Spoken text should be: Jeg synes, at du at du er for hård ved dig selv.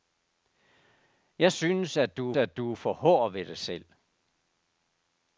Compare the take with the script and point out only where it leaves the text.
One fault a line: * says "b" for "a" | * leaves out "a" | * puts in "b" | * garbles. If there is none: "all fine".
all fine